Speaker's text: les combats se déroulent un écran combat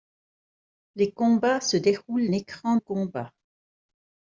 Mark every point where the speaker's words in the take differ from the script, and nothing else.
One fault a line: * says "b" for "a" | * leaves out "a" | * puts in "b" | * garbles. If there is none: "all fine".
all fine